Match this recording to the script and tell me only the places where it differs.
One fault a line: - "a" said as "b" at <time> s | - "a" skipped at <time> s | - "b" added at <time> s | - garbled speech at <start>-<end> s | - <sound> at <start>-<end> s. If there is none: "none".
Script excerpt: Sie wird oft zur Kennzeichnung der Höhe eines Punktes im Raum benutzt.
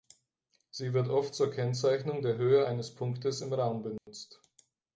- dropout at 4.0-4.1 s